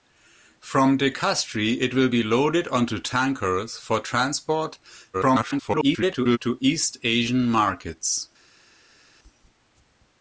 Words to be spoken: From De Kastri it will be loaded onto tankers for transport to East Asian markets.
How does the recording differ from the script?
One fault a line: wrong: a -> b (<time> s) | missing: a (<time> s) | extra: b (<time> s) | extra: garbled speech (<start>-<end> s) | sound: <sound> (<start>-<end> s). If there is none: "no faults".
extra: garbled speech (5.1-6.4 s)